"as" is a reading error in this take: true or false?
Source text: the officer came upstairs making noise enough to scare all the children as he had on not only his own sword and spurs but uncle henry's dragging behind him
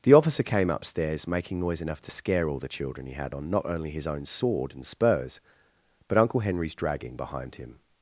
true